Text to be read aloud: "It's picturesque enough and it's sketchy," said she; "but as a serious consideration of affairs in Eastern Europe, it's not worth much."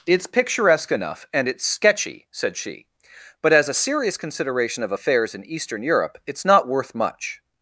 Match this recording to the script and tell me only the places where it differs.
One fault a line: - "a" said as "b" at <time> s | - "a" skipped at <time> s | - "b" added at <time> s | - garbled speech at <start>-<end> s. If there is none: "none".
none